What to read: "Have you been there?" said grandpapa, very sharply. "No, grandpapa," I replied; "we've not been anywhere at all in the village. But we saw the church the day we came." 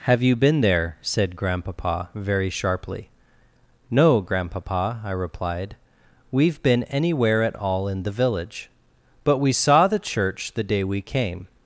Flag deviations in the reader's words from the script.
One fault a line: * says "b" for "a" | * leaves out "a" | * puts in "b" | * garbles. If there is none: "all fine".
* leaves out "not"